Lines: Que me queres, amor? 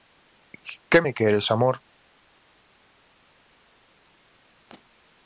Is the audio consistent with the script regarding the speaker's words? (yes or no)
yes